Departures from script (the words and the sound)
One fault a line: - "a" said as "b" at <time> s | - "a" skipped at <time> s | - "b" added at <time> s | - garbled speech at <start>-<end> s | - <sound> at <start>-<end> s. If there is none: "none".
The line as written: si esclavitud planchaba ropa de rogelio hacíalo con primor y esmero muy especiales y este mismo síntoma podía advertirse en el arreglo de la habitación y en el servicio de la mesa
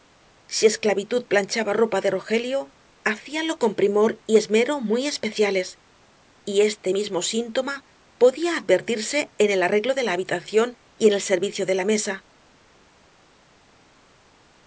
none